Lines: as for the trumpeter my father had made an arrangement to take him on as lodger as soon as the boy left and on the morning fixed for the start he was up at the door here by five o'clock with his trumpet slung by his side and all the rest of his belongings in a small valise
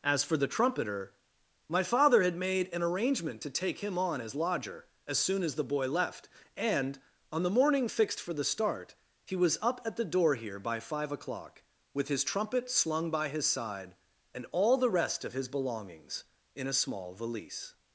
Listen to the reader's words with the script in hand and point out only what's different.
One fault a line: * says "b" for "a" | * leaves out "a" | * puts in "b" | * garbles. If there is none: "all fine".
all fine